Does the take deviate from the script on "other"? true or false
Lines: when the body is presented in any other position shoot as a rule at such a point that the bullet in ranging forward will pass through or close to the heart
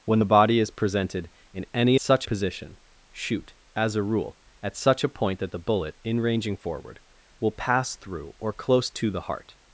true